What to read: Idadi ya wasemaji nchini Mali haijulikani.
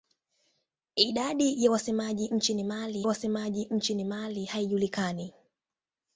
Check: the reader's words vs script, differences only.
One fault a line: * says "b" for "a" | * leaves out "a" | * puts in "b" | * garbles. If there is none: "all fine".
* puts in "wasemaji nchini Mali"